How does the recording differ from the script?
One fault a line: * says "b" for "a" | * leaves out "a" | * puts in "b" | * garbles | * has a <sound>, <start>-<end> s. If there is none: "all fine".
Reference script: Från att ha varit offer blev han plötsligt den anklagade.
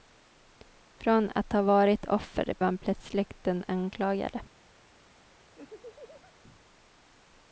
* leaves out "blev"
* has a laugh, 5.6-6.4 s